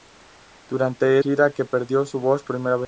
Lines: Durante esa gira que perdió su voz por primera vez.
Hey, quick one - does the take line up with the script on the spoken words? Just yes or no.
no